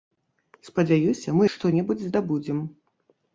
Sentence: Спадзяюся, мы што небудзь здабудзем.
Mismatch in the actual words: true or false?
false